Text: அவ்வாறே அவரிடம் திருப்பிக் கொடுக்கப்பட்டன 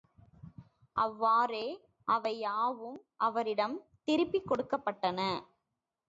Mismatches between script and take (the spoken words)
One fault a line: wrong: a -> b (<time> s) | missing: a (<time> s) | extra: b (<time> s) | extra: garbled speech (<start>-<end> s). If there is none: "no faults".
extra: அவை யாவும் (2.1 s)